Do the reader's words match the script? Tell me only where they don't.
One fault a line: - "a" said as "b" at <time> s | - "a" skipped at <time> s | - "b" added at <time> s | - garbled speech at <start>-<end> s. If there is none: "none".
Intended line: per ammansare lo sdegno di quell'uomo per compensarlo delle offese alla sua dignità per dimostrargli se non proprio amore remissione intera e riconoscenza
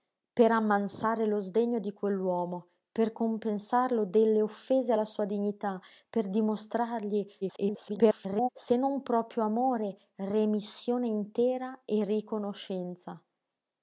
- garbled speech at 7.4-8.5 s